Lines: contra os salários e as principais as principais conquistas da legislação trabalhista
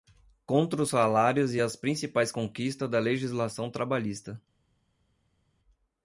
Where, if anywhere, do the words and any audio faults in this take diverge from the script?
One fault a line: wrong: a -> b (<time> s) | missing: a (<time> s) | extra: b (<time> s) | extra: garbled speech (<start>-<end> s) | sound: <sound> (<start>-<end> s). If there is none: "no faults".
missing: as principais (2.3 s)